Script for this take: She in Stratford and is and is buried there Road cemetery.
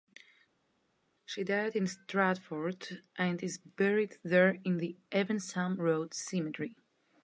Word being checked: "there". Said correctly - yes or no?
no